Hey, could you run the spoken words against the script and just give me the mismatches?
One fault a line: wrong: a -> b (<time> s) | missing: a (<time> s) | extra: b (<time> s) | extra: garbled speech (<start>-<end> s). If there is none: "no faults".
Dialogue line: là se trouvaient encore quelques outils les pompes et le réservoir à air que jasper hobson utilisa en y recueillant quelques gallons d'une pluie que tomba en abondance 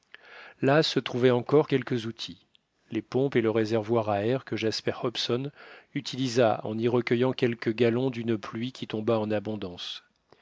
wrong: que -> qui (8.7 s)